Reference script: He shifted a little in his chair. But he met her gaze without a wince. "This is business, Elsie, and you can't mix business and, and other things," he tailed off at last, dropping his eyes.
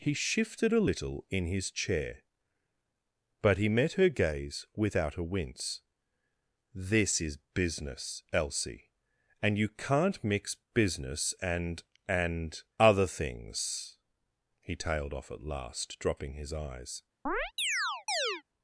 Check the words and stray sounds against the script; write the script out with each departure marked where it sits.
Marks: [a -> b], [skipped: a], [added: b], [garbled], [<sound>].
He shifted a little in his chair. But he met her gaze without a wince. "This is business, Elsie, and you can't mix business and, and other things," he tailed off at last, dropping his eyes. [chirp]